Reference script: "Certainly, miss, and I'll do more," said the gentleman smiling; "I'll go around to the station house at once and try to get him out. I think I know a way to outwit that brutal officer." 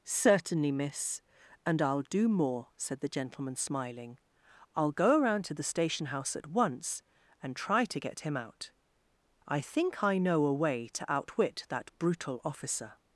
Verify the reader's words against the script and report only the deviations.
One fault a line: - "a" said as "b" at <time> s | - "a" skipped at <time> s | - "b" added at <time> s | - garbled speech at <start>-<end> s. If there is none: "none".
none